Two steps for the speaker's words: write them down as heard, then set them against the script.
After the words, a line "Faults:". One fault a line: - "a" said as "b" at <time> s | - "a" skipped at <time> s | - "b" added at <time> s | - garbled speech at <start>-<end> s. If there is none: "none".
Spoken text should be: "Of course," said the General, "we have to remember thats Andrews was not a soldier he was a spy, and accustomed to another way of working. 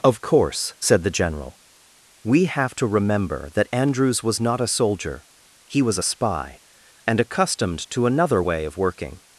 "Of course," said the General, "we have to remember that Andrews was not a soldier he was a spy, and accustomed to another way of working.
Faults:
- "thats" said as "that" at 3.5 s